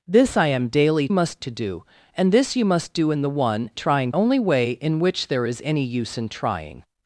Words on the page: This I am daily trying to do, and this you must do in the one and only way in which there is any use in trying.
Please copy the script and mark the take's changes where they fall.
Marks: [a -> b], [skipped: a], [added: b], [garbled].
This I am daily [trying -> must] to do, and this you must do in the one [and -> trying] only way in which there is any use in trying.